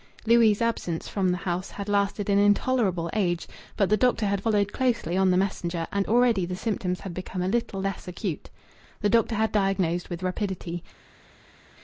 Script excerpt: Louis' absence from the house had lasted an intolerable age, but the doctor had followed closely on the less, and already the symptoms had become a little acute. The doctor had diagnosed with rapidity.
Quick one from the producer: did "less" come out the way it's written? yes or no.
no